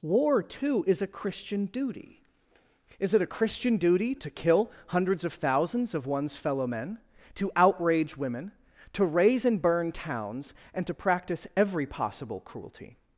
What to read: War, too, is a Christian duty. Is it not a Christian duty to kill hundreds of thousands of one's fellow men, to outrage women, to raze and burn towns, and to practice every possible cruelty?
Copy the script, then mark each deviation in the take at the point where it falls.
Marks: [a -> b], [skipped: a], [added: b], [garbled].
War, too, is a Christian duty. Is it [skipped: not] a Christian duty to kill hundreds of thousands of one's fellow men, to outrage women, to raze and burn towns, and to practice every possible cruelty?